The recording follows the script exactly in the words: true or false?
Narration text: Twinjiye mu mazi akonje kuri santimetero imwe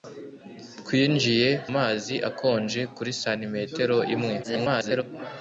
false